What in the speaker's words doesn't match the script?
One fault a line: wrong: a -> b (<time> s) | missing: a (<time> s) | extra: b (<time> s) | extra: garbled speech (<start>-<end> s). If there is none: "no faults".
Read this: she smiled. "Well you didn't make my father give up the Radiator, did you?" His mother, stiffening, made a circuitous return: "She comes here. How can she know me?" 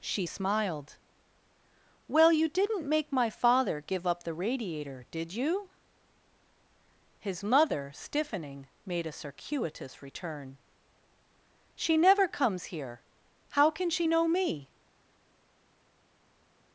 extra: never (12.0 s)